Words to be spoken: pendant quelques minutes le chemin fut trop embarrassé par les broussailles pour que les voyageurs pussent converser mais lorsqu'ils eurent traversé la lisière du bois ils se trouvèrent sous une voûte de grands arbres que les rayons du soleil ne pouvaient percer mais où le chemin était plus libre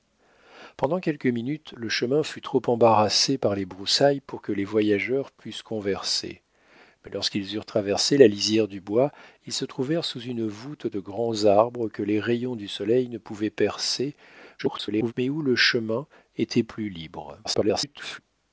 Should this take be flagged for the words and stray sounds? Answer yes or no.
yes